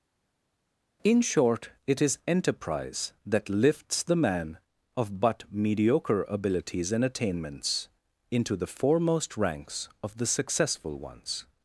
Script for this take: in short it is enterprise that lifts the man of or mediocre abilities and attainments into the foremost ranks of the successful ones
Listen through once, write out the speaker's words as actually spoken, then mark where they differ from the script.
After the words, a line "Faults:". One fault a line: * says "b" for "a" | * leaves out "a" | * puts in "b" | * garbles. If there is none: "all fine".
in short it is enterprise that lifts the man of but mediocre abilities and attainments into the foremost ranks of the successful ones
Faults:
* says "but" for "or"